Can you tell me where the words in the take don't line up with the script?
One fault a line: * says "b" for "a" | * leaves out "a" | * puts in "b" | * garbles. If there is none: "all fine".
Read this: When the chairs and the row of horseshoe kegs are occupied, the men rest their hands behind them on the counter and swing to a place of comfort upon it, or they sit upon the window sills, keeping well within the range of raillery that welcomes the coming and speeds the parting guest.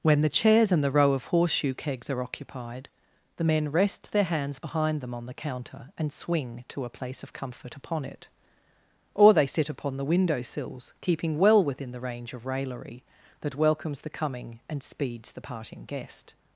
all fine